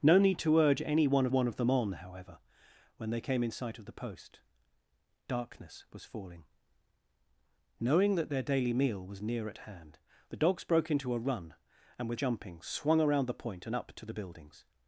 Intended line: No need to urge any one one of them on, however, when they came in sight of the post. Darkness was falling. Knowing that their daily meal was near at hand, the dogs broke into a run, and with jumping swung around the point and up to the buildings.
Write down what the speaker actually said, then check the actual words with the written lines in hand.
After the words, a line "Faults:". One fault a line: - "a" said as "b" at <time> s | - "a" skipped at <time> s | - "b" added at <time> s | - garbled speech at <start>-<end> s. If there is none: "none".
No need to urge any one one of them on, however, when they came in sight of the post. Darkness was falling. Knowing that their daily meal was near at hand, the dogs broke into a run, and with jumping swung around the point and up to the buildings.
Faults:
none